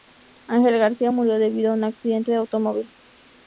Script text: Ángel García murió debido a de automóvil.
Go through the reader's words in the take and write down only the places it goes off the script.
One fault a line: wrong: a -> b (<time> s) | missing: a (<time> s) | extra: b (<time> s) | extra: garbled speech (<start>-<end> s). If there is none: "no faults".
extra: un accidente (1.7 s)